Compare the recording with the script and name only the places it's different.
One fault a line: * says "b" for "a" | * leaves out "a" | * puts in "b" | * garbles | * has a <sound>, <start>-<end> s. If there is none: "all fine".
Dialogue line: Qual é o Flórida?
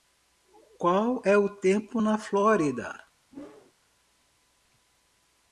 * puts in "tempo na"
* has a whoosh, 3.3-3.7 s